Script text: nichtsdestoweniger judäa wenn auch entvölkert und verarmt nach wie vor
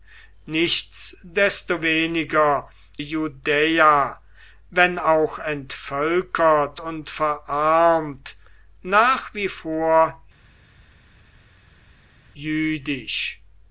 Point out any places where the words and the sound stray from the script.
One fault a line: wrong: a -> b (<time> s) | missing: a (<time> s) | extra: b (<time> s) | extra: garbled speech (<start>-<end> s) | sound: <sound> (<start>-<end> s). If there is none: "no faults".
no faults